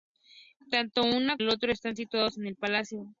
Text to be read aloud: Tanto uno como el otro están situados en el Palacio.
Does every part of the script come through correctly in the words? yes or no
no